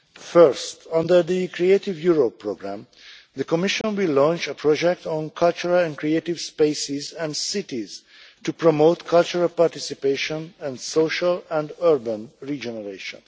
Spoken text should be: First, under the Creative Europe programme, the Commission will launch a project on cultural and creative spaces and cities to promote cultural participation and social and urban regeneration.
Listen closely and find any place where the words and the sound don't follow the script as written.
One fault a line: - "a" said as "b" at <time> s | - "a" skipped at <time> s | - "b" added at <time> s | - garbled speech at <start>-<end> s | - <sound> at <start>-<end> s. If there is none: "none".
- dropout at 3.8-3.8 s